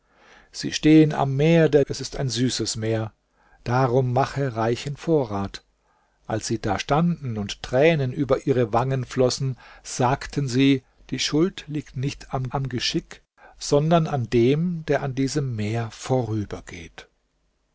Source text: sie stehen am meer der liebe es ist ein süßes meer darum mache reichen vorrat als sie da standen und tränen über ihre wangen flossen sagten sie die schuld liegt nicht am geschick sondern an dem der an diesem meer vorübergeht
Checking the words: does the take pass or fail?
fail